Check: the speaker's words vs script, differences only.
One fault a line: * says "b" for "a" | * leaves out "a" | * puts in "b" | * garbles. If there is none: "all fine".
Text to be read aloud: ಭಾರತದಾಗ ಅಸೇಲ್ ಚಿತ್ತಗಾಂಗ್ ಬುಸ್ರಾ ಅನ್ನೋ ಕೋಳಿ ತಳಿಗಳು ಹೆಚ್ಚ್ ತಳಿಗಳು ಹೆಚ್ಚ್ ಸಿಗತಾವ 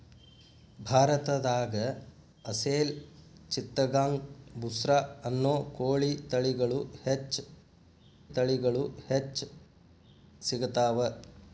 all fine